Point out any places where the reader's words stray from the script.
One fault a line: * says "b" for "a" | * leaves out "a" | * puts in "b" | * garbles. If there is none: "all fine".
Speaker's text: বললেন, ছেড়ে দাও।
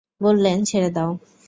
all fine